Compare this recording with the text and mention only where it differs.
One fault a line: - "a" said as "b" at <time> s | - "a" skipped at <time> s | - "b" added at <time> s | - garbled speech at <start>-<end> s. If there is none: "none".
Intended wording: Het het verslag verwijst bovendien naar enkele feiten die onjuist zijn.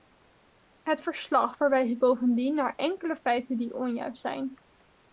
- "het" skipped at 1.0 s